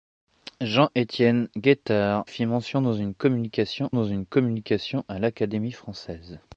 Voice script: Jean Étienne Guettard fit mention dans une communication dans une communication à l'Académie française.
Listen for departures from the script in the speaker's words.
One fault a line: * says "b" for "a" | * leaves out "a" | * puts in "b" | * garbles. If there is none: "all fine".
all fine